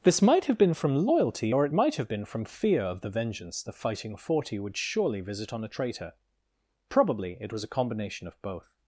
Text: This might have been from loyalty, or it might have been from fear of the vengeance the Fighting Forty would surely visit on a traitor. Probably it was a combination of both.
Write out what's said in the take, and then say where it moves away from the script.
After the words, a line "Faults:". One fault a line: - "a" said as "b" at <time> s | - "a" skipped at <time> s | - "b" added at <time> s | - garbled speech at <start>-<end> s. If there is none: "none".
This might have been from loyalty, or it might have been from fear of the vengeance the Fighting Forty would surely visit on a traitor. Probably it was a combination of both.
Faults:
none